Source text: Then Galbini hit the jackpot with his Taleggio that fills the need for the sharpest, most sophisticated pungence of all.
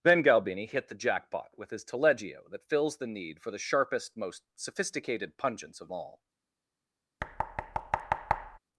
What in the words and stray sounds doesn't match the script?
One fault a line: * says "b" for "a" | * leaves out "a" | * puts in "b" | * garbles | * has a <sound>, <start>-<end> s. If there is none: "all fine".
* has a thud, 7.2-8.6 s